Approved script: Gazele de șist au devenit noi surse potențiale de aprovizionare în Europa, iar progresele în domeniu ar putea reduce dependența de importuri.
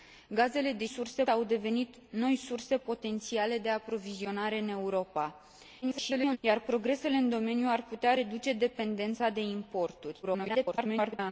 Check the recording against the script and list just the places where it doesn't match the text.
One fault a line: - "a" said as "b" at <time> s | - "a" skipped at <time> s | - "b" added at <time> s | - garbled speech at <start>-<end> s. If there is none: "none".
- "șist" said as "surse" at 0.8 s
- garbled speech at 5.8-6.4 s
- garbled speech at 10.2-11.3 s